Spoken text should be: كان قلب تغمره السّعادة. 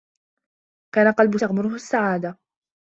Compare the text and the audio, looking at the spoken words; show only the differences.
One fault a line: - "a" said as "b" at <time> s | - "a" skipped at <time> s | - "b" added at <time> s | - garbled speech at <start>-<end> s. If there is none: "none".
none